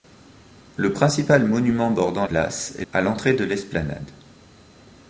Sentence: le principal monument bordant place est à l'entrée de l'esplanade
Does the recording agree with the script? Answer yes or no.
yes